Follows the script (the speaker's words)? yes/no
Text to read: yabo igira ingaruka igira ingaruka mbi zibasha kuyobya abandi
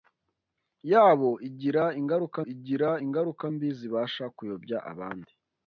yes